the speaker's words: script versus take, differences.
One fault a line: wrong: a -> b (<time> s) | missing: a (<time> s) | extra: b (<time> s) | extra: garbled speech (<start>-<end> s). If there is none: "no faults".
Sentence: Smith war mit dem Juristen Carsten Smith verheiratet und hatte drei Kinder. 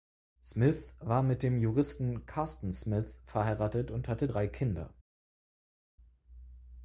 no faults